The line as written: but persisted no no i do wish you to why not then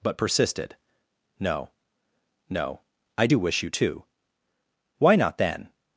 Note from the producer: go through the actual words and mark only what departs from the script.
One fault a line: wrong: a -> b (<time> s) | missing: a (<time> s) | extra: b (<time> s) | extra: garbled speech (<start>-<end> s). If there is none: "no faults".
no faults